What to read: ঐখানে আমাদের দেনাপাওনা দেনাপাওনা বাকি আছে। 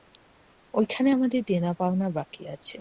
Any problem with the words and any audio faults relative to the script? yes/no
yes